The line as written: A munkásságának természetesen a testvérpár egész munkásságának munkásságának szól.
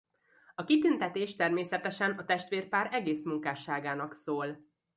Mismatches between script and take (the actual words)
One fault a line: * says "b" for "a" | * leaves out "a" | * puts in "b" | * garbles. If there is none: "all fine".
* says "kitüntetés" for "munkásságának"
* leaves out "munkásságának"